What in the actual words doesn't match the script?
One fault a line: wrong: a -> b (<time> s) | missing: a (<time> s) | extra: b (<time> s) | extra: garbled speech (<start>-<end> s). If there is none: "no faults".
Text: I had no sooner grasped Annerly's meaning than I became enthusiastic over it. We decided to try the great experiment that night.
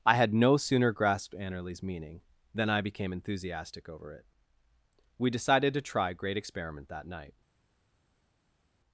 missing: the (6.1 s)